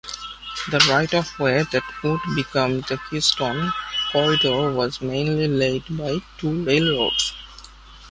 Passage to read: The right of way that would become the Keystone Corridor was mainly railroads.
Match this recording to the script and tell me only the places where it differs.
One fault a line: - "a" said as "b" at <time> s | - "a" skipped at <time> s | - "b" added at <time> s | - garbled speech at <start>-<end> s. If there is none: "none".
- "laid by two" added at 5.5 s